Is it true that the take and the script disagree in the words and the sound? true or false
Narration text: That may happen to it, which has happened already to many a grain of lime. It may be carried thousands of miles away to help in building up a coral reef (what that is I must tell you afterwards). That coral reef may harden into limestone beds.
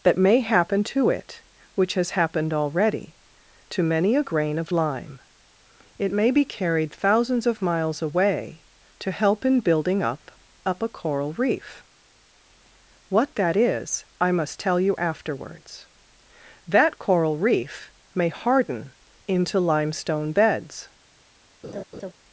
true